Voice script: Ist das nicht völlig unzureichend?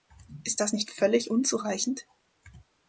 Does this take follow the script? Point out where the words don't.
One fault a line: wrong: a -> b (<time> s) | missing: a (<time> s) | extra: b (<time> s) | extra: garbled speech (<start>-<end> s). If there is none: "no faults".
no faults